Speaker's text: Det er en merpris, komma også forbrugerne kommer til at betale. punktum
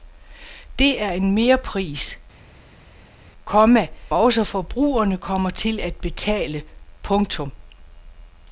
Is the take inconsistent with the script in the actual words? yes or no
no